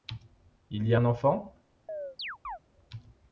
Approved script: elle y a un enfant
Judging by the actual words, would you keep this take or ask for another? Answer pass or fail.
fail